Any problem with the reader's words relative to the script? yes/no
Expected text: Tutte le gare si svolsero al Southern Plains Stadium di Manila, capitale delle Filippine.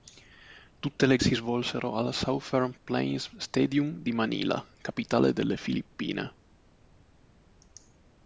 yes